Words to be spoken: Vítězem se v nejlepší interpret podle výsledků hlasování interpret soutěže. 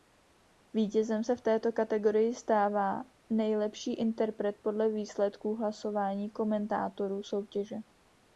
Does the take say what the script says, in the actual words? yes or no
no